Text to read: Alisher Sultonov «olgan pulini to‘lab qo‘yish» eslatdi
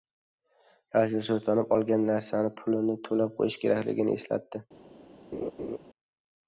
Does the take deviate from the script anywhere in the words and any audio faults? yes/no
yes